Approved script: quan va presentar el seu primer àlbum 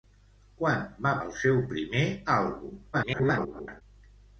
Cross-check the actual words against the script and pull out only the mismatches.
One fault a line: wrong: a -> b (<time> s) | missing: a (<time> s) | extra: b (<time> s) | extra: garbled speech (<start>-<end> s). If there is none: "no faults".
missing: presentar (1.1 s)
extra: garbled speech (2.9-3.8 s)